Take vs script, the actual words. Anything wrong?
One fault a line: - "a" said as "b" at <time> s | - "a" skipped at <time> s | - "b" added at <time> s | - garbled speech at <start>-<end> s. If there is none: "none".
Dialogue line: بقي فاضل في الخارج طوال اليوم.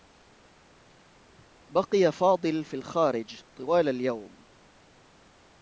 none